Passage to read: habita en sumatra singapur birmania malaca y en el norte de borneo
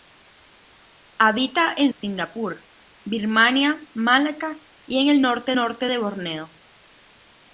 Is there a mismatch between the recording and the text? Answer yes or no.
yes